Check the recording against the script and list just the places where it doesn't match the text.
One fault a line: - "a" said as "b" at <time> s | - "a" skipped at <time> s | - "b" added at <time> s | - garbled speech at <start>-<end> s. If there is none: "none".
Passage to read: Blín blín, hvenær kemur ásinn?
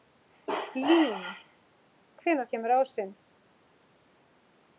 - "blín" skipped at 1.1 s